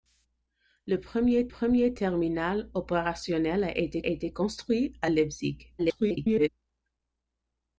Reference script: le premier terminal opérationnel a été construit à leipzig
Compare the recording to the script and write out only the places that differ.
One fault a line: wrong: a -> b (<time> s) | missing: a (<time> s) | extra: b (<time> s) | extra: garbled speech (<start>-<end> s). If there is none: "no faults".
extra: premier (1.5 s)
extra: été (4.1 s)
extra: garbled speech (5.8-6.5 s)